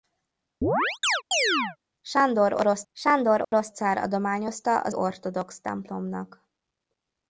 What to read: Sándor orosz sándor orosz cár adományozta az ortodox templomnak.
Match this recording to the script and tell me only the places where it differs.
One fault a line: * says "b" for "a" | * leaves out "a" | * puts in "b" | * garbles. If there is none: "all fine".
all fine